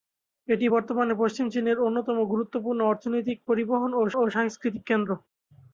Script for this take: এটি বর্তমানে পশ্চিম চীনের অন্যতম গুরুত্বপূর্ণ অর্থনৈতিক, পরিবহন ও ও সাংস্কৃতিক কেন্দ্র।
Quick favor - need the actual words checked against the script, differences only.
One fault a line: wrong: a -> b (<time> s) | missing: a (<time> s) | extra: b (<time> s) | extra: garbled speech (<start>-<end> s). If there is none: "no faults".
no faults